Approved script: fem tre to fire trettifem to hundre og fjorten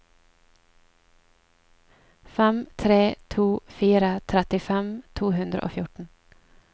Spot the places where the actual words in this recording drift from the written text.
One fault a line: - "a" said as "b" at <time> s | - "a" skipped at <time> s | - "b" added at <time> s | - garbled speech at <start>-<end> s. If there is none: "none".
none